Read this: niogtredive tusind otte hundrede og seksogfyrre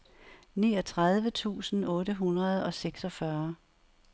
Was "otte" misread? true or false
false